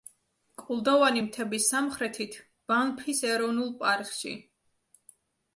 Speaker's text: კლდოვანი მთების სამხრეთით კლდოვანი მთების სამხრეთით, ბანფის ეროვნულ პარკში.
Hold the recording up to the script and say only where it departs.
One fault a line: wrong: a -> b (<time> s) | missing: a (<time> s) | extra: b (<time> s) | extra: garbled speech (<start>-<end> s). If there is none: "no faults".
missing: კლდოვანი მთების სამხრეთით (2.4 s)